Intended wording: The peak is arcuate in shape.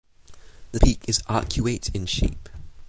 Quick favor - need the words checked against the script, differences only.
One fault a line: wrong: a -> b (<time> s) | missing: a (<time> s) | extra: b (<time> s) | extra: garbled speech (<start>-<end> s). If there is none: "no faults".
no faults